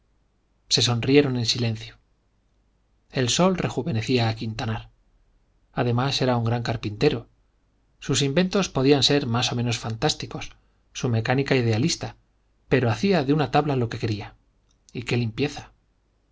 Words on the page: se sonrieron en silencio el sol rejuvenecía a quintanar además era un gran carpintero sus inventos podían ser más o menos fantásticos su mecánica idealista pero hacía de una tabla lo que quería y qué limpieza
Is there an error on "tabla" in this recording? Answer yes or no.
no